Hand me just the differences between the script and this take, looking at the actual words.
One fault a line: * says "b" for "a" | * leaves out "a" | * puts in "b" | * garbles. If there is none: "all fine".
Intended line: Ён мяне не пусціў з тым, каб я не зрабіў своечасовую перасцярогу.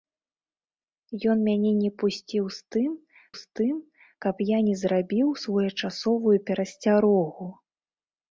* puts in "з тым"